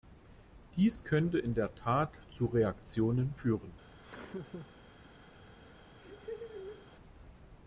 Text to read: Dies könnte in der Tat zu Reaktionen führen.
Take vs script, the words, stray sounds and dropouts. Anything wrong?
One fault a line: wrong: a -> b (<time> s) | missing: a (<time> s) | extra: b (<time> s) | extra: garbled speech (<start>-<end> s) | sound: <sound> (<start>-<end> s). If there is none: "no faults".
sound: laugh (4.0-4.7 s)
sound: laugh (6.0-6.9 s)